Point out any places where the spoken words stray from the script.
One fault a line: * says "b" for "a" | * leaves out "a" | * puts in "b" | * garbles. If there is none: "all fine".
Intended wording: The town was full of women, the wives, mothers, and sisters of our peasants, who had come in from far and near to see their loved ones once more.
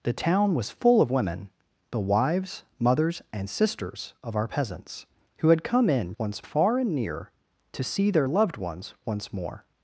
* says "once" for "from"